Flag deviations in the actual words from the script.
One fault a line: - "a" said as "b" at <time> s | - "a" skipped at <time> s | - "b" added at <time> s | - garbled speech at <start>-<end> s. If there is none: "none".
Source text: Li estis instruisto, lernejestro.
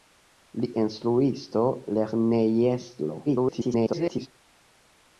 - "estis" skipped at 0.7 s
- garbled speech at 3.3-4.3 s